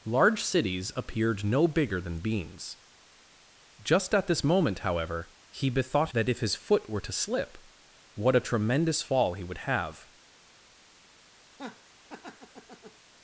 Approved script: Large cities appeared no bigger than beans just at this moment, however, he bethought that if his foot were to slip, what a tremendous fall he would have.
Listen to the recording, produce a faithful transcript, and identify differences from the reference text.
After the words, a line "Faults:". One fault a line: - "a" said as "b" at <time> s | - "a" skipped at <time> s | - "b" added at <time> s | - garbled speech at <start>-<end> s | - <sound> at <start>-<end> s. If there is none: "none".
Large cities appeared no bigger than beans just at this moment, however, he bethought that if his foot were to slip, what a tremendous fall he would have.
Faults:
- laugh at 11.5-13.0 s